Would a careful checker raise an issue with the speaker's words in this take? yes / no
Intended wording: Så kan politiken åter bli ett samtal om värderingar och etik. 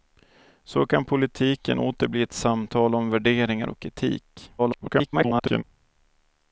yes